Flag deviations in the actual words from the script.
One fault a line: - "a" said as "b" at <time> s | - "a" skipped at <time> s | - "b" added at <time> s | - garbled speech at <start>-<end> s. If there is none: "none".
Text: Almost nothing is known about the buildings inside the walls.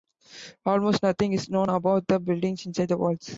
none